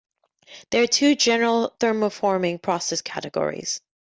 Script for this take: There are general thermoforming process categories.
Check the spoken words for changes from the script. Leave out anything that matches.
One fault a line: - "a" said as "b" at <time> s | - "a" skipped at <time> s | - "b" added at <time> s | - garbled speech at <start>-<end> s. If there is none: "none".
- "two" added at 0.9 s